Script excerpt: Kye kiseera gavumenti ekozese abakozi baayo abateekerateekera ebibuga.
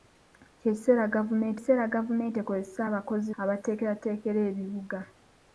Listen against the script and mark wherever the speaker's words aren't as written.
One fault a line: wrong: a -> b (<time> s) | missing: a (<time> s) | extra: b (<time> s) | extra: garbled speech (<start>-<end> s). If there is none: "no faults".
extra: kiseera gavumenti (1.6 s)
missing: baayo (3.3 s)